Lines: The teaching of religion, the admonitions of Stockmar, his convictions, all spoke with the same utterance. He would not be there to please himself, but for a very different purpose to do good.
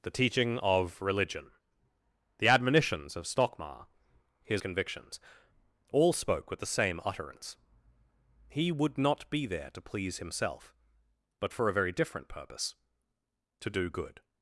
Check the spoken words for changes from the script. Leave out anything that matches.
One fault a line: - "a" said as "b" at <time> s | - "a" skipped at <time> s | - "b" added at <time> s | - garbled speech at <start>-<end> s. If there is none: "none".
none